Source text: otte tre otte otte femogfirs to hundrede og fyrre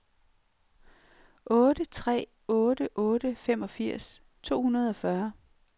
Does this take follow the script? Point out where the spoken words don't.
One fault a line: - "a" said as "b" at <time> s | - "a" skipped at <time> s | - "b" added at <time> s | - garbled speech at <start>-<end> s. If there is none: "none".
none